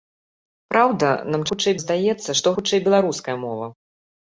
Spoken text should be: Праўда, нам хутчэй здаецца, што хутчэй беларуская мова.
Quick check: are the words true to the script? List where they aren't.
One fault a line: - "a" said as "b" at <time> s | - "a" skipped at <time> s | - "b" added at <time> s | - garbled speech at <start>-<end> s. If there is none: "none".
none